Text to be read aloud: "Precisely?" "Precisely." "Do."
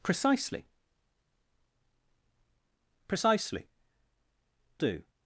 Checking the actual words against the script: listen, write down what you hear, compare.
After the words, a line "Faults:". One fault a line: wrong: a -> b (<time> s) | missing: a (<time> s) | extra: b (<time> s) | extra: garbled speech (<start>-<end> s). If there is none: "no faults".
"Precisely?" "Precisely." "Do."
Faults:
no faults